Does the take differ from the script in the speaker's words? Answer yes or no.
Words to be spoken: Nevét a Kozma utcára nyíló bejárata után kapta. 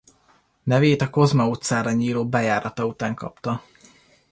no